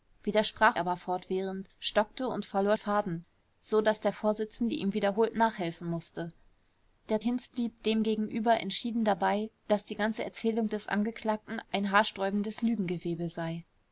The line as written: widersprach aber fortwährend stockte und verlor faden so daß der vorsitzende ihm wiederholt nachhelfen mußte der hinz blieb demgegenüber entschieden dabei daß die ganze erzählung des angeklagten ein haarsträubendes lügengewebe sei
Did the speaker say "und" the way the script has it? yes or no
yes